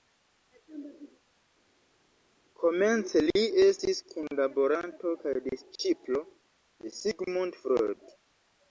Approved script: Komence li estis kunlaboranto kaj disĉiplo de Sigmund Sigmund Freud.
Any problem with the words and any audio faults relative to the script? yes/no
yes